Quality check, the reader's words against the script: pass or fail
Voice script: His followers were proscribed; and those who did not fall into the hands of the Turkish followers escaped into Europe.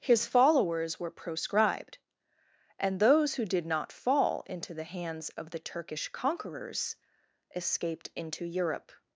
fail